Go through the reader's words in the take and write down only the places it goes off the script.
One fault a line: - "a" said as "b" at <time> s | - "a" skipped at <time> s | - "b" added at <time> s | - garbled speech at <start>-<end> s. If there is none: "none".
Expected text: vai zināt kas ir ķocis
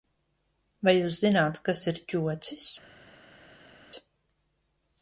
- "jūs" added at 0.9 s